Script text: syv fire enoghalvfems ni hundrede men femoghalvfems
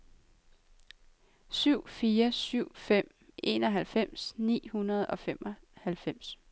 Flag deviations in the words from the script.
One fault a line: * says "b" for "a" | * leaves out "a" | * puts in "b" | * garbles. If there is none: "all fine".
* puts in "syv fem"
* says "og" for "men"